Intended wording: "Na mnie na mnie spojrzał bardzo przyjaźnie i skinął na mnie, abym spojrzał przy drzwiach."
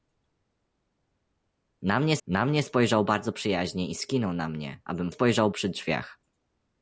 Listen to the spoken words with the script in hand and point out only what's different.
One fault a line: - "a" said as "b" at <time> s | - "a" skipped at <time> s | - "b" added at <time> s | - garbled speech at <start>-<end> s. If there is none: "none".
none